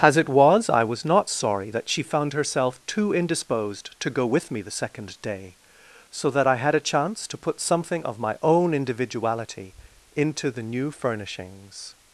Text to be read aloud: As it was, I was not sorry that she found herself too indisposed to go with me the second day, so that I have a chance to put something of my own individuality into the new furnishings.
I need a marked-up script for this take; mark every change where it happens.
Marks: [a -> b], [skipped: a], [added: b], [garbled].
As it was, I was not sorry that she found herself too indisposed to go with me the second day, so that I [have -> had] a chance to put something of my own individuality into the new furnishings.